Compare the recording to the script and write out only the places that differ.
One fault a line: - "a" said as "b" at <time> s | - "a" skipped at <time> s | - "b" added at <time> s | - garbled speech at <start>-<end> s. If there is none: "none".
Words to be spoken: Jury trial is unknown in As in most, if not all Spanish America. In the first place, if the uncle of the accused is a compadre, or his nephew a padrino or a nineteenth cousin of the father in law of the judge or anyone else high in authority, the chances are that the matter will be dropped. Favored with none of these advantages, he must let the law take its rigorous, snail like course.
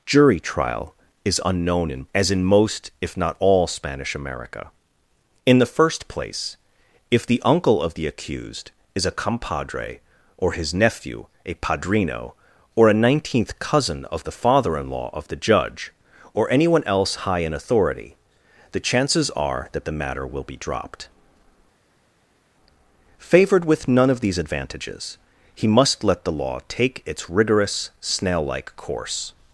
none